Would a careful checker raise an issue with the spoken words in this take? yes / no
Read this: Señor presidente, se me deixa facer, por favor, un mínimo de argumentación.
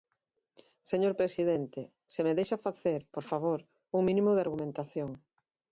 no